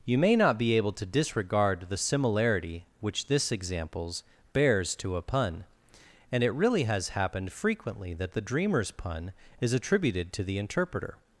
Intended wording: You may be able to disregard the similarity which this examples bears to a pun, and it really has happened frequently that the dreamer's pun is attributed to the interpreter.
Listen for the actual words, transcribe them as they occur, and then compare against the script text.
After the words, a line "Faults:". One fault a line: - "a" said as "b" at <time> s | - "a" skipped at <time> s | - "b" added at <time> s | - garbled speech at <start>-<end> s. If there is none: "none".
You may not be able to disregard the similarity which this examples bears to a pun, and it really has happened frequently that the dreamer's pun is attributed to the interpreter.
Faults:
- "not" added at 0.3 s